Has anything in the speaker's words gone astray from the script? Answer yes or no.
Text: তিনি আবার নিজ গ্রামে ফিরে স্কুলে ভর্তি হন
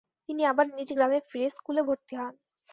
no